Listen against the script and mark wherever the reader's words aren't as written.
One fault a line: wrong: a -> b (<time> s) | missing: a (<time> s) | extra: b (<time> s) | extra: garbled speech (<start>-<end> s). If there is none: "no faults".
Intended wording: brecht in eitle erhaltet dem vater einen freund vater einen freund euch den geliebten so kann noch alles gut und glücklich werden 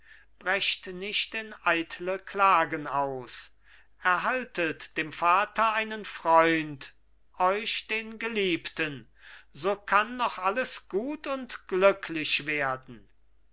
extra: nicht (0.9 s)
extra: klagen aus (2.2 s)
missing: vater einen freund (7.0 s)